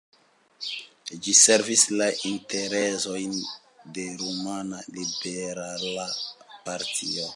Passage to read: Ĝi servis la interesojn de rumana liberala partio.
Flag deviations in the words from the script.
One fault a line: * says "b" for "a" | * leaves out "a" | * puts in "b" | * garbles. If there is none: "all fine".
all fine